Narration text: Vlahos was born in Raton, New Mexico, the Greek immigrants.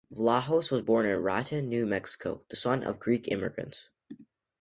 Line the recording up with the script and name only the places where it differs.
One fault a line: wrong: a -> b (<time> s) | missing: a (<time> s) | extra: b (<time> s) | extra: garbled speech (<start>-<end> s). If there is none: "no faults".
extra: son of (2.5 s)